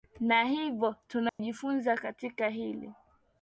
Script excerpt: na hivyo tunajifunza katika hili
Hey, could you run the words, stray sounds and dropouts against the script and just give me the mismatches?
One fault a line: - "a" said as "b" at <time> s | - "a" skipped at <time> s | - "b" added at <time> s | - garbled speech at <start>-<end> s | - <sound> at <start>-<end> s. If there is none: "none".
- dropout at 1.3-1.4 s